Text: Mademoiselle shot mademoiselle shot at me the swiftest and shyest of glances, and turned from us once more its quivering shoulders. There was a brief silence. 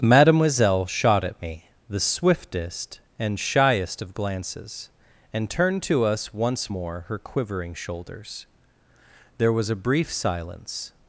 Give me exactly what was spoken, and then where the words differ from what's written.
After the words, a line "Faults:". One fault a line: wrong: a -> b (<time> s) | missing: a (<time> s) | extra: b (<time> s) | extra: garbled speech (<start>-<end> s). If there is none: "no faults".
Mademoiselle shot at me the swiftest and shyest of glances, and turned to us once more her quivering shoulders. There was a brief silence.
Faults:
missing: mademoiselle shot (1.3 s)
wrong: from -> to (5.8 s)
wrong: its -> her (7.1 s)